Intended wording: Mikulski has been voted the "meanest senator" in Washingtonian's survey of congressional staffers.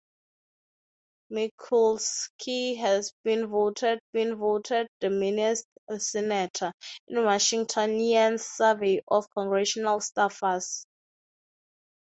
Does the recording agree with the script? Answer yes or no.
no